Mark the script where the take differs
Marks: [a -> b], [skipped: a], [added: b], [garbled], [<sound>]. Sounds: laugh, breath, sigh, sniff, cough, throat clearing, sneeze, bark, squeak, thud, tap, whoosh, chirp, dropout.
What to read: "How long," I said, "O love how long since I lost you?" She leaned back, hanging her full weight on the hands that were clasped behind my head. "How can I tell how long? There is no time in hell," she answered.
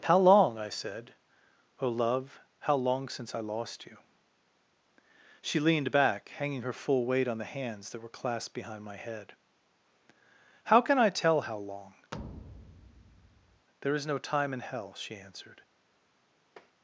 "How long," I said, "O love how long since I lost you?" She leaned back, hanging her full weight on the hands that were clasped behind my head. "How can I tell how long? [thud] There is no time in hell," she answered. [tap]